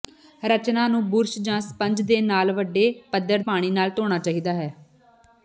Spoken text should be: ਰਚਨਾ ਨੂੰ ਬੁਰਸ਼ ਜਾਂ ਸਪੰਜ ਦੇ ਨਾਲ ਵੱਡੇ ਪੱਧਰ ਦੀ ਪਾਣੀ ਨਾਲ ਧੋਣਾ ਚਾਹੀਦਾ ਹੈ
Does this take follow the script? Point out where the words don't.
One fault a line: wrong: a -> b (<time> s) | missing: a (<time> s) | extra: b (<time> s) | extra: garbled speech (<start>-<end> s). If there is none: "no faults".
missing: ਦੀ (3.4 s)